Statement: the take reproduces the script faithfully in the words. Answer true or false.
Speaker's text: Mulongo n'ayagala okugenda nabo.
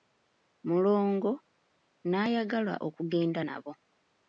true